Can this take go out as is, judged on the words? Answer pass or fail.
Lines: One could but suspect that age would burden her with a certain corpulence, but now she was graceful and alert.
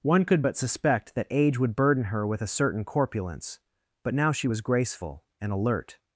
pass